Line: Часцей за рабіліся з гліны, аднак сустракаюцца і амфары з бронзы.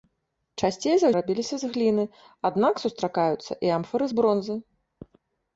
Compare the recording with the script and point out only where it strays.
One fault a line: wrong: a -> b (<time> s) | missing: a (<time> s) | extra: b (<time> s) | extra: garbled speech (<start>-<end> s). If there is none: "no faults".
no faults